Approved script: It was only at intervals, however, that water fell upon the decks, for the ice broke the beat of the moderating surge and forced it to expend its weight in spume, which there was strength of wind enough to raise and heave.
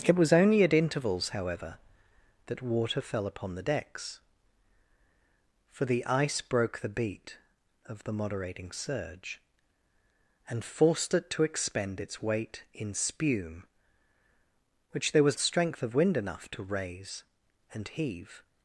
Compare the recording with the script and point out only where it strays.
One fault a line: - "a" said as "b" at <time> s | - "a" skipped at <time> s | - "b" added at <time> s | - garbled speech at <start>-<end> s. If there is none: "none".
none